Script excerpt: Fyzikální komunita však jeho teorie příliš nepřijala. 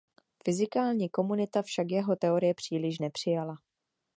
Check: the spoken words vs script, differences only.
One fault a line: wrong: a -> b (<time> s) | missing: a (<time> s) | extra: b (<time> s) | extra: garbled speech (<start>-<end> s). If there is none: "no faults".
no faults